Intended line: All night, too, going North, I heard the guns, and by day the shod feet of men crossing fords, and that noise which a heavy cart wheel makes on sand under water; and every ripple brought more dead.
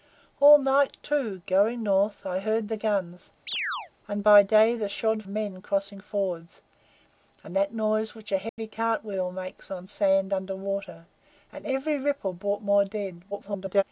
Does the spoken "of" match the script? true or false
false